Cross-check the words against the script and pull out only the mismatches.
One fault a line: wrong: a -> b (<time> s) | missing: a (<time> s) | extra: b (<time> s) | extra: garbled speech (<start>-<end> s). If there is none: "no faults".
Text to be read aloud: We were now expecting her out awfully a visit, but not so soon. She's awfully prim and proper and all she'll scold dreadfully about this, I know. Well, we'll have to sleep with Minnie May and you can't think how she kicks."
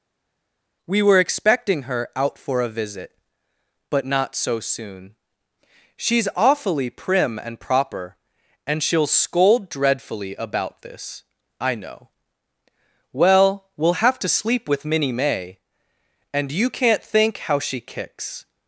missing: now (1.2 s)
wrong: awfully -> for (2.4 s)
missing: all (8.8 s)